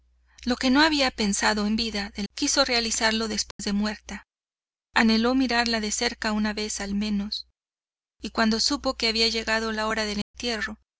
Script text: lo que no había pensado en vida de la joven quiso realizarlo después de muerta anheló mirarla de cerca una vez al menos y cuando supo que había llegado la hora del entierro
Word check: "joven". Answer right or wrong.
wrong